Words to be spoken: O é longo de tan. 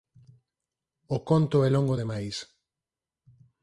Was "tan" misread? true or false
true